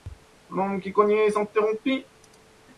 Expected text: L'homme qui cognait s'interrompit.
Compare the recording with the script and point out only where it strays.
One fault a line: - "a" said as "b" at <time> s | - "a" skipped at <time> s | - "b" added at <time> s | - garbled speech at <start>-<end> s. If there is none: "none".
none